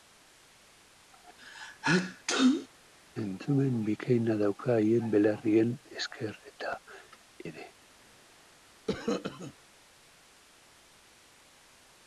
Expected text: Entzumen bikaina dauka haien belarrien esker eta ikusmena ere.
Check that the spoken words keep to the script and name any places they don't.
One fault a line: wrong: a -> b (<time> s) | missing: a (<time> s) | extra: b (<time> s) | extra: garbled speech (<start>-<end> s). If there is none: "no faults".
missing: ikusmena (6.7 s)